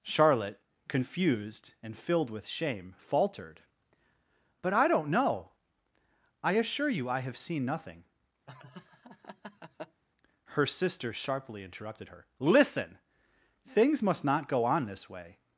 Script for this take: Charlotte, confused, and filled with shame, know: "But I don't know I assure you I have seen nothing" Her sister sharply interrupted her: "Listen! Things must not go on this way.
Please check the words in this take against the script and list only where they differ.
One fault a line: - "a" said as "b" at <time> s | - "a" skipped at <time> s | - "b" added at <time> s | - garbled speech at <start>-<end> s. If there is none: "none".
- "know" said as "faltered" at 3.0 s